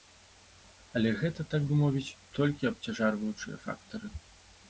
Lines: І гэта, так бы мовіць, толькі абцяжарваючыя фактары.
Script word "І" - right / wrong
wrong